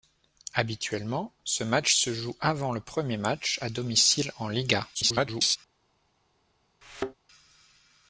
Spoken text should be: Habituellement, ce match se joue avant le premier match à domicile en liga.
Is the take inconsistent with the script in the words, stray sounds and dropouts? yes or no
yes